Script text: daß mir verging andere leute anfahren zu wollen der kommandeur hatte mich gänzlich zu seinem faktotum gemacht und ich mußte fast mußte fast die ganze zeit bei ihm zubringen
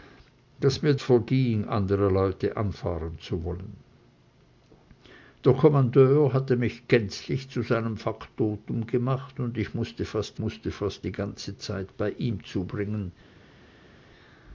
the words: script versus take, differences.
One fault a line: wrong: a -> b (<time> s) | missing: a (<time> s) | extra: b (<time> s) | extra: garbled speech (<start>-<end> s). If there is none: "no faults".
no faults